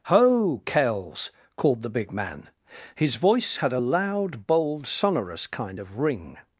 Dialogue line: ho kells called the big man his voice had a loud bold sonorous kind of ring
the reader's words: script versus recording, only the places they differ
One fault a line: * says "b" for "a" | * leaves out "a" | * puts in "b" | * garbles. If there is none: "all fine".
all fine